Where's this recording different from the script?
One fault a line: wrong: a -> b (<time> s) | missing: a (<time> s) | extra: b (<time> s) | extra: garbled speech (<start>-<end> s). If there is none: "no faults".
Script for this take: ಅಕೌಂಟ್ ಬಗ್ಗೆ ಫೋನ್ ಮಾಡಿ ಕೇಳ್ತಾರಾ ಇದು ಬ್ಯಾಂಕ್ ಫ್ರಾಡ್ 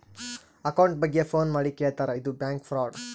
no faults